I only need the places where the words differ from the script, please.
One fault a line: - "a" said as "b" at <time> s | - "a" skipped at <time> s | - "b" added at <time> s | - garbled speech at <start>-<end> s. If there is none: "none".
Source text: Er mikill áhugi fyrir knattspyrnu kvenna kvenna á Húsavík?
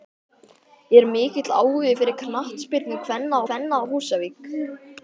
none